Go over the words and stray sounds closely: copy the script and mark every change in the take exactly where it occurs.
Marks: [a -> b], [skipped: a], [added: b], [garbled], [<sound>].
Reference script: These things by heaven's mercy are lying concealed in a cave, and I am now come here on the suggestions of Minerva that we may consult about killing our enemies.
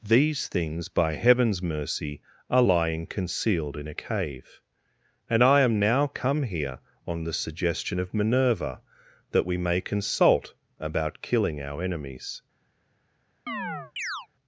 These things by heaven's mercy are lying concealed in a cave, and I am now come here on the [suggestions -> suggestion] of Minerva that we may consult about killing our enemies. [chirp]